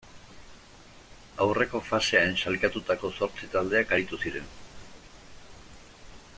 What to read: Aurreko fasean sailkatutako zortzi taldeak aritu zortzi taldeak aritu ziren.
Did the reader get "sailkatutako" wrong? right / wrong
right